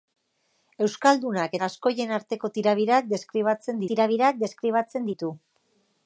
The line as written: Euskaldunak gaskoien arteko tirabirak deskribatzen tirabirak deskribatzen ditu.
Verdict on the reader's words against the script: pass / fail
pass